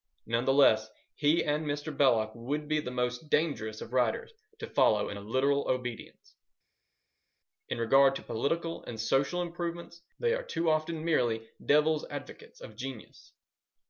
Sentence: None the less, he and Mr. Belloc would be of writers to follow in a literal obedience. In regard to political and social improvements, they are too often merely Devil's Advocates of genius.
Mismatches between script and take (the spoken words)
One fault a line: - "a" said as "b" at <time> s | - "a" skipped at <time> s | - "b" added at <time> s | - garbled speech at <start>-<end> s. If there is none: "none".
- "the most dangerous" added at 2.8 s